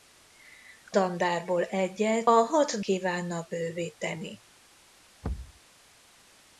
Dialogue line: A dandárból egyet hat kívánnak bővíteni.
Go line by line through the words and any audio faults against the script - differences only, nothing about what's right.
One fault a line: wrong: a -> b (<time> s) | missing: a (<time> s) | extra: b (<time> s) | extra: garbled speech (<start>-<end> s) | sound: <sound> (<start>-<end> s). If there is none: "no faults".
sound: thud (5.2-5.6 s)